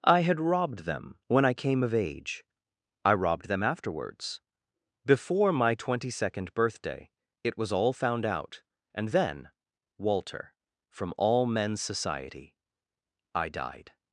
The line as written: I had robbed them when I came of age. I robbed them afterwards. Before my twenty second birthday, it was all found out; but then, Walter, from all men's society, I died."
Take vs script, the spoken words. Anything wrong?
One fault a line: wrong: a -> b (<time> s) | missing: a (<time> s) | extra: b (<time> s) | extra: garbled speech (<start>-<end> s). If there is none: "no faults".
wrong: but -> and (8.9 s)